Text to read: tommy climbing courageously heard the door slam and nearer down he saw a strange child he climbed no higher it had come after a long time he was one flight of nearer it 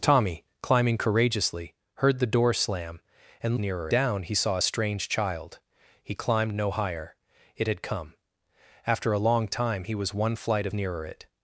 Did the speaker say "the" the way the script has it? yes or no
yes